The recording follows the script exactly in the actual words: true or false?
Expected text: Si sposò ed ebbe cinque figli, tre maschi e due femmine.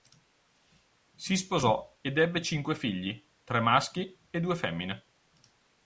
true